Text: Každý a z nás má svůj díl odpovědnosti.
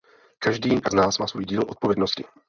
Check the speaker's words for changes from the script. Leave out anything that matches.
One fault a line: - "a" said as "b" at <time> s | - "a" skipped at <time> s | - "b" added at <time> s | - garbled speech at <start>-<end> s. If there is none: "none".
none